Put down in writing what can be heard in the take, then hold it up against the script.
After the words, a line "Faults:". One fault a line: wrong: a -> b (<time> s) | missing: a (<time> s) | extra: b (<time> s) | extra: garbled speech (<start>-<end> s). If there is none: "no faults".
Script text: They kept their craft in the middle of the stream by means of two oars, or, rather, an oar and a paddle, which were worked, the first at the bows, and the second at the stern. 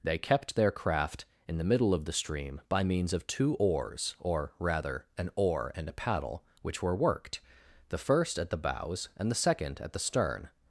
They kept their craft in the middle of the stream by means of two oars, or, rather, an oar and a paddle, which were worked, the first at the bows, and the second at the stern.
Faults:
no faults